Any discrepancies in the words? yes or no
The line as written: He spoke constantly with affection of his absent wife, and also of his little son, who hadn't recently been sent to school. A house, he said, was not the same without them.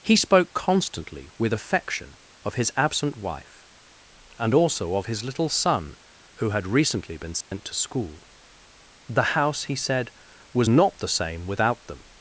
yes